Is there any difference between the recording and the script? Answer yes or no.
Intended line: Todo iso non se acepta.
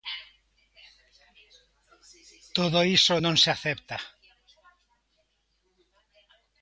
no